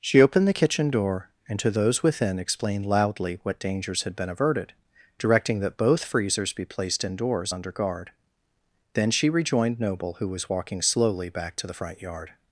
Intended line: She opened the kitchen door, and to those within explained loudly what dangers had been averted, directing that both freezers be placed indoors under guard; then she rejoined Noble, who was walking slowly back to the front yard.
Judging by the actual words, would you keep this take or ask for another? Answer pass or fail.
pass